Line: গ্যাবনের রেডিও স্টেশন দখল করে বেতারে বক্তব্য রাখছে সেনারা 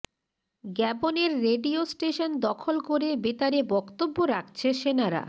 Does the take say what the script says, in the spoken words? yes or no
yes